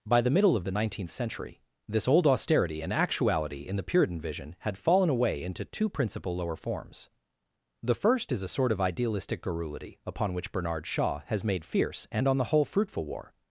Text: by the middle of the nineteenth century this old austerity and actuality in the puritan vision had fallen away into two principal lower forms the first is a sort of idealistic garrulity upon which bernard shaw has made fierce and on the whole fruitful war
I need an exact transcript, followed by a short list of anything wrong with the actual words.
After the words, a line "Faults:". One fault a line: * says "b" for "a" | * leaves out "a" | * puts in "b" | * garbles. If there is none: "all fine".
by the middle of the nineteenth century this old austerity and actuality in the puritan vision had fallen away into two principal lower forms the first is a sort of idealistic garrulity upon which bernard shaw has made fierce and on the whole fruitful war
Faults:
all fine